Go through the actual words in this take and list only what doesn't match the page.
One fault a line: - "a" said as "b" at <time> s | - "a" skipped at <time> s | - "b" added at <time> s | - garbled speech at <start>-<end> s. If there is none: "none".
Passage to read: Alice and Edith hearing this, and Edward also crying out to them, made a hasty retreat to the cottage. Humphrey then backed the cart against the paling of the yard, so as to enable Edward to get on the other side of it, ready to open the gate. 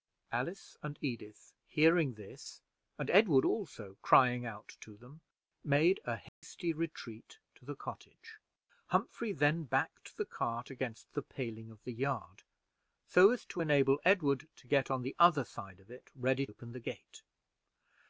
- "to" skipped at 16.5 s